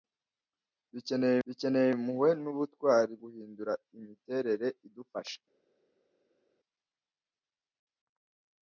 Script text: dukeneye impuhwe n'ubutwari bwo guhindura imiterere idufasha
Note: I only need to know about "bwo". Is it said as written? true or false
false